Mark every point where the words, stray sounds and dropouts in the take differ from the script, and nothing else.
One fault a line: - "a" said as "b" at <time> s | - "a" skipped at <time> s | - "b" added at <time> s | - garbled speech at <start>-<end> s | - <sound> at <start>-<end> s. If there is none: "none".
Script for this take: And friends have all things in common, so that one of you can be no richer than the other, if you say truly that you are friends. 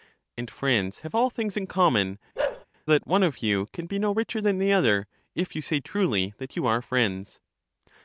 - "so" skipped at 2.2 s
- bark at 2.4-2.7 s